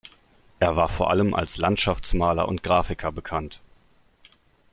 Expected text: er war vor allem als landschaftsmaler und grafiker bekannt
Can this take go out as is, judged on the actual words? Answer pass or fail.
pass